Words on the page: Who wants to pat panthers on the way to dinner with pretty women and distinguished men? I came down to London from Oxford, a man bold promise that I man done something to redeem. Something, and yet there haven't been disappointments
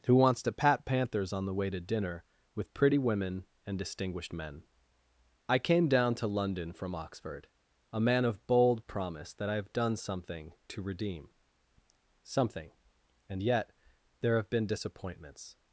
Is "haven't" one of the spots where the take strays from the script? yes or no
yes